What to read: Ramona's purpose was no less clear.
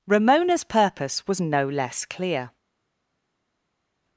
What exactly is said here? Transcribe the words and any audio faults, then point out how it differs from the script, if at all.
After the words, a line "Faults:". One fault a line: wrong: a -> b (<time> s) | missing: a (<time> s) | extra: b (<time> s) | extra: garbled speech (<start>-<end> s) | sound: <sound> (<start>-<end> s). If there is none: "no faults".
Ramona's purpose was no less clear.
Faults:
no faults